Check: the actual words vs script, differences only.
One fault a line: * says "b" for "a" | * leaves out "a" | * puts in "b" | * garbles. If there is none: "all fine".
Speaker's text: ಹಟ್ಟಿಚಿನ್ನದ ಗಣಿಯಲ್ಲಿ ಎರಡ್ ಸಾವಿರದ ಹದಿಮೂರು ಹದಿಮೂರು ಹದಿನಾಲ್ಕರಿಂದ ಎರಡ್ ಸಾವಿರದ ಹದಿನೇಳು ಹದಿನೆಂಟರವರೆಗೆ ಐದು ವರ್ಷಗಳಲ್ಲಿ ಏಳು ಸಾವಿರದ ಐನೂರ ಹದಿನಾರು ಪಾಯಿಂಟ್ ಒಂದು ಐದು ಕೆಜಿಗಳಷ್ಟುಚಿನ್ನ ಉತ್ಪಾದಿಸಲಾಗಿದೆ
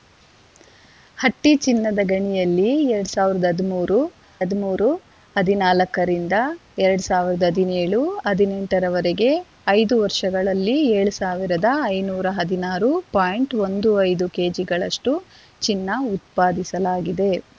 all fine